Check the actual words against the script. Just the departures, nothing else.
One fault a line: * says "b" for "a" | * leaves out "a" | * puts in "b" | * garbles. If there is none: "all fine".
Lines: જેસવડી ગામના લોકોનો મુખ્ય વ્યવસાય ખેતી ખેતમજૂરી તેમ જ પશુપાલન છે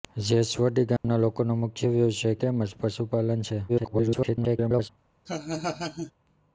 * leaves out "ખેતી ખેતમજૂરી"
* garbles